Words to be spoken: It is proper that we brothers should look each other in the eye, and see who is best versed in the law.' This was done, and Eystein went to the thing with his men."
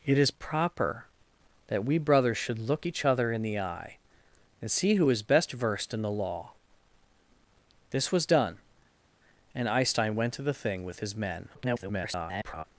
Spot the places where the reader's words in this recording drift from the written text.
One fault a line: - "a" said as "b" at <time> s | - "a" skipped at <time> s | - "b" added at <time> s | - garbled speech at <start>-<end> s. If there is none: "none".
- garbled speech at 11.5-12.6 s